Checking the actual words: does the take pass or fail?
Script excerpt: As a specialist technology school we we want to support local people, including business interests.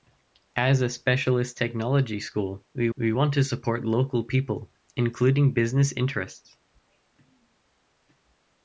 pass